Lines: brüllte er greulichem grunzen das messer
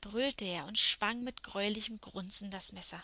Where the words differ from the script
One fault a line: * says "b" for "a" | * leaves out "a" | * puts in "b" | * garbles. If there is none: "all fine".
* puts in "und schwang mit"